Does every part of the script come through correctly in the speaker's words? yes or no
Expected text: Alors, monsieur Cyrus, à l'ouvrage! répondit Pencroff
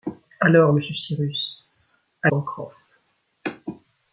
no